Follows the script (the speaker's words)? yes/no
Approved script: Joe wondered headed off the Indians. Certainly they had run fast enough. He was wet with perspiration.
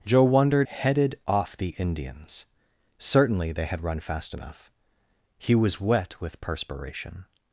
yes